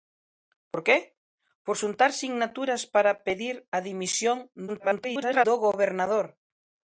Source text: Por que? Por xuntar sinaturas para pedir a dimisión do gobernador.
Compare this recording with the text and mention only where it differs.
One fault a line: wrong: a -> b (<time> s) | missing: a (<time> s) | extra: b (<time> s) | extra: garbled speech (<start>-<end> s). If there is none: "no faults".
extra: garbled speech (4.7-5.4 s)